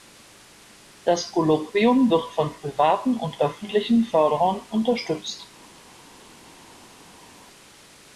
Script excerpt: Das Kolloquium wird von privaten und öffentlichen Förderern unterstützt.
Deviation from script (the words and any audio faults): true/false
false